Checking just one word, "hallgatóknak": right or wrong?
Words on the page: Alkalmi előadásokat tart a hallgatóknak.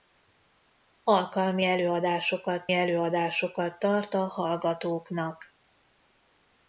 right